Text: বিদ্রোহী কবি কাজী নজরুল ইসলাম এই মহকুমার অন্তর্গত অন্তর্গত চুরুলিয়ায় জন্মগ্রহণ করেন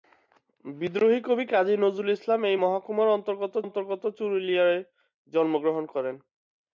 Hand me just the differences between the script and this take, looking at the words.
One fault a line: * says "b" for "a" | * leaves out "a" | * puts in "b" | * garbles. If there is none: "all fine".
all fine